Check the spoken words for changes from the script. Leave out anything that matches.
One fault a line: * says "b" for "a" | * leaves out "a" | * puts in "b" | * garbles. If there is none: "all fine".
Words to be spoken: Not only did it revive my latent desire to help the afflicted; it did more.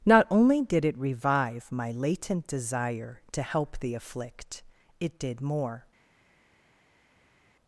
* says "afflict" for "afflicted"